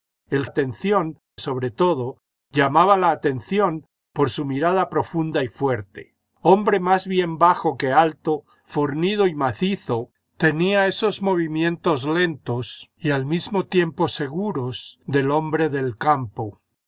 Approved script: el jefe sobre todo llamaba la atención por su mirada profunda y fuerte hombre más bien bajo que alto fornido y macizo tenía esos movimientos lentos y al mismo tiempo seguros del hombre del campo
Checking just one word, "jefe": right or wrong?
wrong